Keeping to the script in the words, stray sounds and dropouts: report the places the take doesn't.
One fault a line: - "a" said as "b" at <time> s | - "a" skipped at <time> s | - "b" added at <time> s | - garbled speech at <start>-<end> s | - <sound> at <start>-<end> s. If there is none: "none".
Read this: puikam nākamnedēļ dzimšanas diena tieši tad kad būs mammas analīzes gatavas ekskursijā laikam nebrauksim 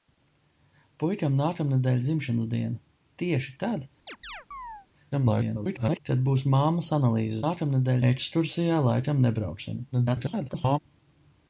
- chirp at 4.1-4.9 s
- garbled speech at 5.1-6.0 s
- "gatavas" said as "nākamnedēļ" at 7.4 s
- garbled speech at 9.9-10.8 s